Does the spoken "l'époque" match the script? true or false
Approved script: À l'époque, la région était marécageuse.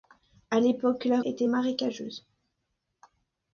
true